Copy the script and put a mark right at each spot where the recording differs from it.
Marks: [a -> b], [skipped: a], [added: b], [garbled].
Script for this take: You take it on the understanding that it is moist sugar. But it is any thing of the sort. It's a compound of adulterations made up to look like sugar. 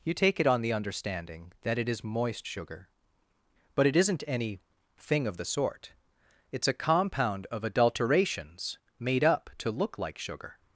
You take it on the understanding that it is moist sugar. But it [is -> isn't] any thing of the sort. It's a compound of adulterations made up to look like sugar.